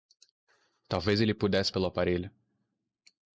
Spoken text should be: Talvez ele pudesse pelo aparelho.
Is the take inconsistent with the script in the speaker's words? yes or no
no